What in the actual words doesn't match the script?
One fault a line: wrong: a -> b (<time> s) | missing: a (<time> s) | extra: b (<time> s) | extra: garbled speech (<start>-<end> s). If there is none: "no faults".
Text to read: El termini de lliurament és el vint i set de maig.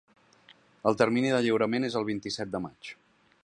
no faults